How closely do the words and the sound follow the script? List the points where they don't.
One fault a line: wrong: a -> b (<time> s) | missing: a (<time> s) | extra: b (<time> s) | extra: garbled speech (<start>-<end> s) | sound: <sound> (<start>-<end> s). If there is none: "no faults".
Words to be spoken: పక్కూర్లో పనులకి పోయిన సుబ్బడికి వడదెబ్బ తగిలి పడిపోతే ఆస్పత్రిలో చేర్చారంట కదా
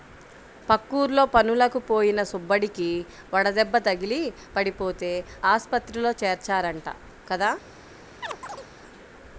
sound: chirp (8.2-8.7 s)